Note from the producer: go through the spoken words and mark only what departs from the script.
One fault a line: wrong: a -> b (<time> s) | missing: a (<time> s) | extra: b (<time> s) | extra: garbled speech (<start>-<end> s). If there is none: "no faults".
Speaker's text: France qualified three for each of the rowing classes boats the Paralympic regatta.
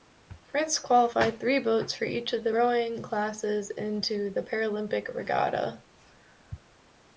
extra: boats (1.6 s)
wrong: boats -> into (3.7 s)